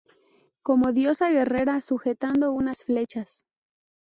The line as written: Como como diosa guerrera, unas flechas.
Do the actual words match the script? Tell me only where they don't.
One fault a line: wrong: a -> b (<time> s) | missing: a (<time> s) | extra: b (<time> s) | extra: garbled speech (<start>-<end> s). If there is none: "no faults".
missing: como (0.9 s)
extra: sujetando (1.8 s)